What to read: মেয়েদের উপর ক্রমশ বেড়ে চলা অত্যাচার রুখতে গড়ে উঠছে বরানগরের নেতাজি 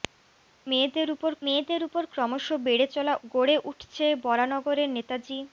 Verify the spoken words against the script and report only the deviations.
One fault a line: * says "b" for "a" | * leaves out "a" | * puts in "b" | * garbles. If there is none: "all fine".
* puts in "মেয়েদের উপর"
* leaves out "অত্যাচার রুখতে"